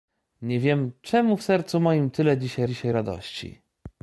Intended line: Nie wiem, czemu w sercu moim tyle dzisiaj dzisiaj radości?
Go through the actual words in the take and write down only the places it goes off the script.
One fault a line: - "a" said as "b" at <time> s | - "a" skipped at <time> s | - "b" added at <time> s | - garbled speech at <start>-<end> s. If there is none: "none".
none